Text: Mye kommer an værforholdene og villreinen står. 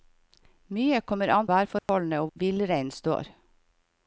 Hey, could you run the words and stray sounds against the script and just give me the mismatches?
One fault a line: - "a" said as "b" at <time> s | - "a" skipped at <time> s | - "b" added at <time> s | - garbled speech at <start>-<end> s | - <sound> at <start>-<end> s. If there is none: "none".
- dropout at 1.8-1.9 s